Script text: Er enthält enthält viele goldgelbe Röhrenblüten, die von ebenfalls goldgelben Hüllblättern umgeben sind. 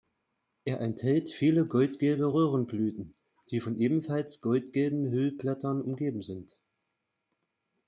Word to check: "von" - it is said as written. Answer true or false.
true